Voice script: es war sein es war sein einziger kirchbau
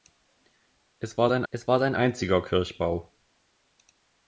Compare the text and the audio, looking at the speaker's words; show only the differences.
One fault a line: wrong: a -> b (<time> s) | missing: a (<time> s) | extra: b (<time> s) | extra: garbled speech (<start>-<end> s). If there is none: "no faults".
no faults